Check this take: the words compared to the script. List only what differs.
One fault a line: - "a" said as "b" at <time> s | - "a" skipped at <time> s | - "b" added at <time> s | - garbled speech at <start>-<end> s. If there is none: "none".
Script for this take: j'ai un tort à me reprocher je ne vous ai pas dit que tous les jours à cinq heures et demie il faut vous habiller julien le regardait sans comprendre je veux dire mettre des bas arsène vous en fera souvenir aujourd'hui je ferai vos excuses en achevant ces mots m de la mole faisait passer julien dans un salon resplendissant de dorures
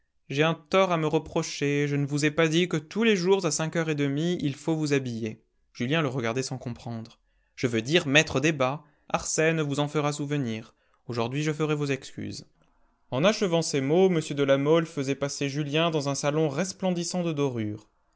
none